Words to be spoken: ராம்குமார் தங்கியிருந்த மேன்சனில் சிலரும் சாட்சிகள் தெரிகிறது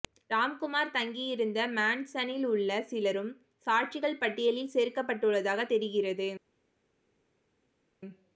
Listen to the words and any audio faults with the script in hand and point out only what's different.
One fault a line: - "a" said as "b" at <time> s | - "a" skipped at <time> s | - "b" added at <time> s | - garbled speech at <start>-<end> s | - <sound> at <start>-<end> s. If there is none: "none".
- "உள்ள" added at 2.5 s
- "பட்டியலில் சேர்க்கப்பட்டுள்ளதாக" added at 4.2 s